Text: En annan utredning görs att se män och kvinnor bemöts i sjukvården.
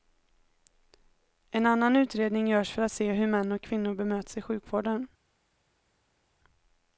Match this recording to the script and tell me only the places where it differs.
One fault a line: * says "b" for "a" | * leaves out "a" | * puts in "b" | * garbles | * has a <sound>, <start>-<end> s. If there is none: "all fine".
* puts in "för"
* puts in "hur"